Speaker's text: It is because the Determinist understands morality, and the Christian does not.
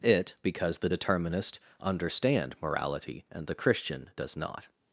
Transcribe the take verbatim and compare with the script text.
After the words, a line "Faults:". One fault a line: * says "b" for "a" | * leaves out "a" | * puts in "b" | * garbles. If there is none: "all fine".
It because the Determinist understand morality, and the Christian does not.
Faults:
* leaves out "is"
* says "understand" for "understands"